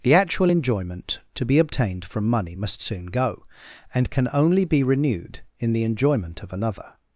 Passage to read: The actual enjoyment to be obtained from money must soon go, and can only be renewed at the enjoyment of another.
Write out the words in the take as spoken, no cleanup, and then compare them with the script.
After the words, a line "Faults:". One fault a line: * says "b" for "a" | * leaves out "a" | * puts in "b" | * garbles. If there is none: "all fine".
The actual enjoyment to be obtained from money must soon go, and can only be renewed in the enjoyment of another.
Faults:
* says "in" for "at"